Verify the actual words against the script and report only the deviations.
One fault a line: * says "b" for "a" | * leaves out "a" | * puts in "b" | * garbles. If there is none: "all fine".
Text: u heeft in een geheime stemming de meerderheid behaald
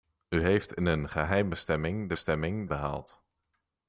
* says "stemming" for "meerderheid"